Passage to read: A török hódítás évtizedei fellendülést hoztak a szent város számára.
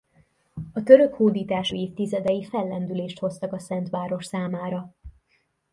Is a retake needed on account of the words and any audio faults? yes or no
no